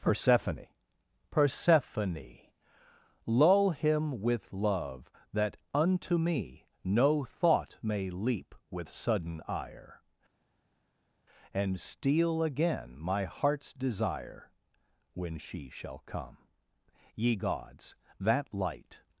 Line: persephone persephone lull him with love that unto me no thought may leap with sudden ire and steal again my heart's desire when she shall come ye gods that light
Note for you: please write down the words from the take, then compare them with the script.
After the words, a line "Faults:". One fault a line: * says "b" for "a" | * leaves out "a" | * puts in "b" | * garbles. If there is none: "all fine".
persephone persephone lull him with love that unto me no thought may leap with sudden ire and steal again my heart's desire when she shall come ye gods that light
Faults:
all fine